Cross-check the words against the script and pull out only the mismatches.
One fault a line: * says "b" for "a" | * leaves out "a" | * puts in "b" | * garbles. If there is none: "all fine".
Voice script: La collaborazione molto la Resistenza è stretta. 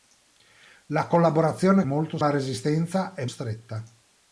all fine